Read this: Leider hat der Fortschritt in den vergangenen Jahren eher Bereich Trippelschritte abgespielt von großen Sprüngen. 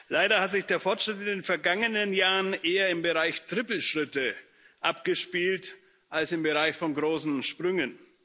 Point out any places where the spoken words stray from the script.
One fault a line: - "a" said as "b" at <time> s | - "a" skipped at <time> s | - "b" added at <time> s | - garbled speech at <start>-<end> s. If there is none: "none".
- "sich" added at 0.5 s
- "im" added at 2.9 s
- "als im Bereich" added at 6.1 s